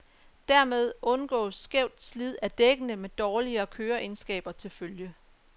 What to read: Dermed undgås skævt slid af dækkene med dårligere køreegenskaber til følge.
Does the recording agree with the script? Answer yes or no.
yes